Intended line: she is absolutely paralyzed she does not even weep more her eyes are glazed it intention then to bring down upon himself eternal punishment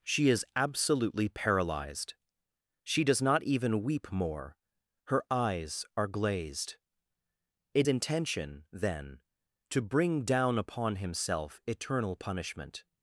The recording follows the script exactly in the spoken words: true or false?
true